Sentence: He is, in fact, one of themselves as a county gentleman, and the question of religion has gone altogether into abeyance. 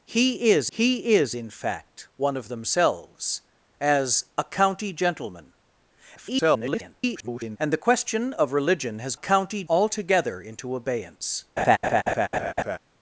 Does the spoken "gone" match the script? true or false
false